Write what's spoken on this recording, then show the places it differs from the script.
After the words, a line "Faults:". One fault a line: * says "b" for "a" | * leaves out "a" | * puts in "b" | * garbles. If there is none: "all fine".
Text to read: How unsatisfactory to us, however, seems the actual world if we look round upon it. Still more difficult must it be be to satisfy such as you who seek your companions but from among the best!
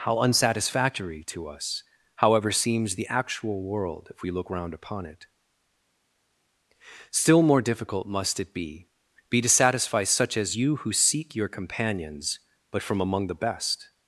How unsatisfactory to us, however, seems the actual world if we look round upon it. Still more difficult must it be be to satisfy such as you who seek your companions but from among the best!
Faults:
all fine